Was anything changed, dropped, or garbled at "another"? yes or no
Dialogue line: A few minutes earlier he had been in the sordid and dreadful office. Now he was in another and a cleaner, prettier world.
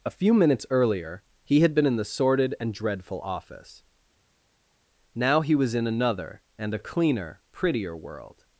no